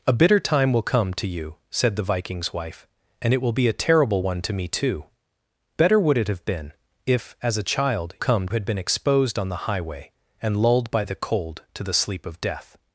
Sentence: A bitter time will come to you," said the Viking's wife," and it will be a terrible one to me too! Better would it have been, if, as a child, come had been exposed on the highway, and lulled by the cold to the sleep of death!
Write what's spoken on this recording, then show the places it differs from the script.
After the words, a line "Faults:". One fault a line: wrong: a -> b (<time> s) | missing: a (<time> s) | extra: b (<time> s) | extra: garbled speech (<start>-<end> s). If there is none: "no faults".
A bitter time will come to you," said the Viking's wife," and it will be a terrible one to me too! Better would it have been, if, as a child, come had been exposed on the highway, and lulled by the cold to the sleep of death!
Faults:
no faults